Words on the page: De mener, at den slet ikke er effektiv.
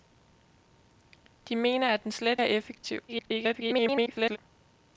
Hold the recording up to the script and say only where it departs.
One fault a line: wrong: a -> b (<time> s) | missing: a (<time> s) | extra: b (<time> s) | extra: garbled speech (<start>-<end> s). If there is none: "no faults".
missing: ikke (2.4 s)
extra: garbled speech (3.1-4.4 s)